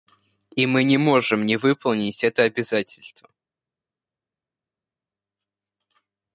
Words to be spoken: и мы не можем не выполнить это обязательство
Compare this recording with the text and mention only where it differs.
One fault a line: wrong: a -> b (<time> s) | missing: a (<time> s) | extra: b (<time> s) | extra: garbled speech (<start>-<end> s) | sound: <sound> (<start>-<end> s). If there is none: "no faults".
no faults